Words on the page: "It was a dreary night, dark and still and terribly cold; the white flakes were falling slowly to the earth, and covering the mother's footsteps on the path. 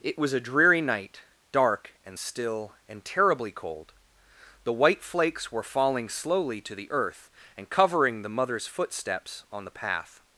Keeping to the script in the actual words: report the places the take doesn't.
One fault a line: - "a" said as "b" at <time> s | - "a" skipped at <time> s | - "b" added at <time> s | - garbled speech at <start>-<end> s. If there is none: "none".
none